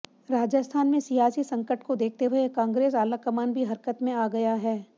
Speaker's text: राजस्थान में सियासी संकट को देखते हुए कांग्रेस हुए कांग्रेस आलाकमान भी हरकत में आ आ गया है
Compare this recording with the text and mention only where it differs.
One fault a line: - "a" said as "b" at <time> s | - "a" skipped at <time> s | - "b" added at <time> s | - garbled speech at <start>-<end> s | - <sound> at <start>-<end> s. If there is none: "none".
- "हुए कांग्रेस" skipped at 2.9 s
- "आ" skipped at 4.3 s